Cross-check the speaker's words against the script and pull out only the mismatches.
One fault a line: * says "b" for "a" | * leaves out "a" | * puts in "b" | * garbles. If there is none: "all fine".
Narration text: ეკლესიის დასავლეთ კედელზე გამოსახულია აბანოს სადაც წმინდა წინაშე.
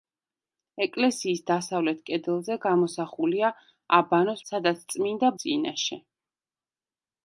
all fine